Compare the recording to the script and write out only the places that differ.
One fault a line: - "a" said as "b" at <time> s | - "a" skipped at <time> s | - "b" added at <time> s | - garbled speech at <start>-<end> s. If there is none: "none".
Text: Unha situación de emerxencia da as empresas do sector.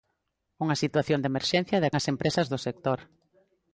none